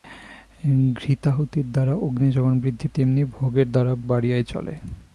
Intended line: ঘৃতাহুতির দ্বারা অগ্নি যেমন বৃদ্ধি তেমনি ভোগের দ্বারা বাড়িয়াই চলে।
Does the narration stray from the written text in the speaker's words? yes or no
no